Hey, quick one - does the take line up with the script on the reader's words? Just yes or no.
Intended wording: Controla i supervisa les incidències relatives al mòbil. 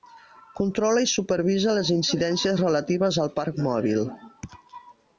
no